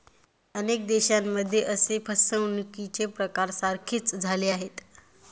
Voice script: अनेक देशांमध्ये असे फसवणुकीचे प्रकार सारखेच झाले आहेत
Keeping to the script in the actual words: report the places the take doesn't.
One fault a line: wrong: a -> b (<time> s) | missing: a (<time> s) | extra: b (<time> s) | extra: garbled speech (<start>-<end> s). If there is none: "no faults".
no faults